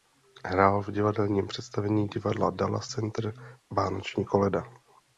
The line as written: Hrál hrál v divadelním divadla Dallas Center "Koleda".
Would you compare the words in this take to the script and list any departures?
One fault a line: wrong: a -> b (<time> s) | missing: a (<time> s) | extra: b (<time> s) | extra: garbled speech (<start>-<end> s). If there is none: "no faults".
missing: hrál (0.8 s)
extra: představení (1.5 s)
extra: Vánoční (3.7 s)